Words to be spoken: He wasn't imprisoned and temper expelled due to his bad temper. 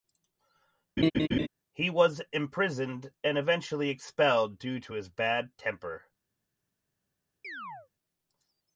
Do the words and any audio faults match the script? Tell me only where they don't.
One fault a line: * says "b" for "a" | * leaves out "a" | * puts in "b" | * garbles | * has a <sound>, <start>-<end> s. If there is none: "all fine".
* has a laugh, 1.0-1.5 s
* says "was" for "wasn't"
* says "eventually" for "temper"
* has a chirp, 7.4-7.9 s